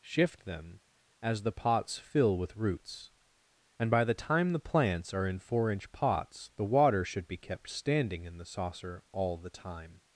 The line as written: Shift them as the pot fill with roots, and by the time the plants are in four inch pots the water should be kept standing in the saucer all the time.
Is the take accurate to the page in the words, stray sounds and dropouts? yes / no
no